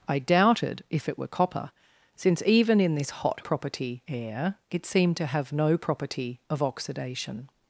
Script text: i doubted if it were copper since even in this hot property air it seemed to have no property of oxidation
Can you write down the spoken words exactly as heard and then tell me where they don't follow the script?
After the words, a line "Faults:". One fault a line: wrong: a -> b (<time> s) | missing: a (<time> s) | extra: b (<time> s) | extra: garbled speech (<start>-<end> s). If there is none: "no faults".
i doubted if it were copper since even in this hot property air it seemed to have no property of oxidation
Faults:
no faults